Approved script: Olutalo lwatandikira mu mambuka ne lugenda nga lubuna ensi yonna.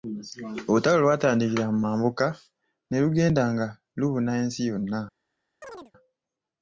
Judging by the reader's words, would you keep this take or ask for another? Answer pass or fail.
pass